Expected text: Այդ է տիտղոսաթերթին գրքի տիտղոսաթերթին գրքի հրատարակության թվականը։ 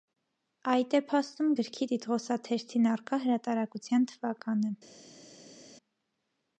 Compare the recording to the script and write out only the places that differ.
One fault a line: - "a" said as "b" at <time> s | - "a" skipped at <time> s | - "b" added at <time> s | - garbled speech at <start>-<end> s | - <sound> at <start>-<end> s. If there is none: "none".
- "տիտղոսաթերթին" said as "փաստում" at 1.1 s
- "գրքի" said as "առկա" at 2.9 s